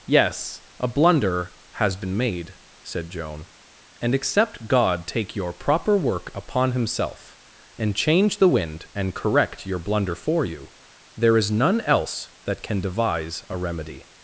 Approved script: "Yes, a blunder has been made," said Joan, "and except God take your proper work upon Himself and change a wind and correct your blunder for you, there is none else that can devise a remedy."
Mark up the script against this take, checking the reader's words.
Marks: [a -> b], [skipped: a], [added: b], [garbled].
"Yes, a blunder has been made," said Joan, "and except God take your proper work upon Himself and change [a -> the] wind and correct your blunder for you, there is none else that can devise a remedy."